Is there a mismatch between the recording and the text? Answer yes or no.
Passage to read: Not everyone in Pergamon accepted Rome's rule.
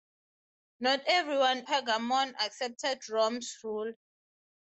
yes